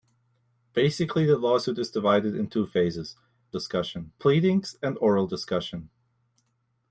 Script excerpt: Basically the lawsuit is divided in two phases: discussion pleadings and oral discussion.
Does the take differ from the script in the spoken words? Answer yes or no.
no